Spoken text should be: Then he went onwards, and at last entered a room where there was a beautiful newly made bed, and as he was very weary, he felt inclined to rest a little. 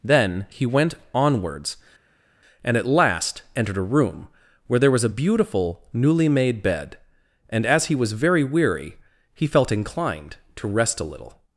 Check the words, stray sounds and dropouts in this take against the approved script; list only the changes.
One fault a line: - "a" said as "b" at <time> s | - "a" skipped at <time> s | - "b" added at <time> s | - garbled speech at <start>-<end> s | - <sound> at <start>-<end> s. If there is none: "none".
none